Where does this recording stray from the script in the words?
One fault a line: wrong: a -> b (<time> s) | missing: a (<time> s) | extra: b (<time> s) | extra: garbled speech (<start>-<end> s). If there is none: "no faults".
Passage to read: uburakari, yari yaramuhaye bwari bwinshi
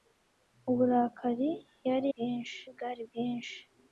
wrong: yaramuhaye -> bwinshi (2.1 s)